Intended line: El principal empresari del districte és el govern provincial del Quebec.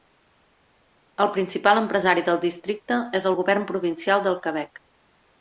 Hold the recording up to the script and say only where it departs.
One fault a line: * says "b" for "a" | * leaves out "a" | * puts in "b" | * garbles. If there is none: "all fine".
all fine